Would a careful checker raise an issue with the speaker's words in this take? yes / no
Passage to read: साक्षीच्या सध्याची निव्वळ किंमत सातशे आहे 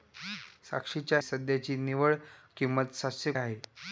no